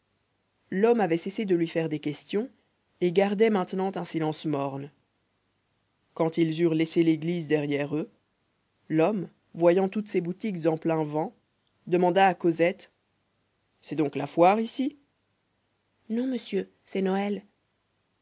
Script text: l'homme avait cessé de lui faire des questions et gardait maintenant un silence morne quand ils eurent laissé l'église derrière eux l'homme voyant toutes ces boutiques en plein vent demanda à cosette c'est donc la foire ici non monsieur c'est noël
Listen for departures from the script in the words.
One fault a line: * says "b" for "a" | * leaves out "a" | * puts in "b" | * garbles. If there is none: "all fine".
all fine